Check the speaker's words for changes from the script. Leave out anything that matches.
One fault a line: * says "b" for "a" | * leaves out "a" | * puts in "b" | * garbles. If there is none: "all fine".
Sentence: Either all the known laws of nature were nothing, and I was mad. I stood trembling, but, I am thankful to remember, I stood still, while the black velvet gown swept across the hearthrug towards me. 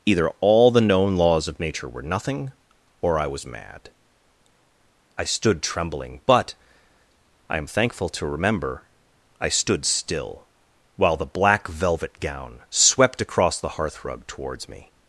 * says "or" for "and"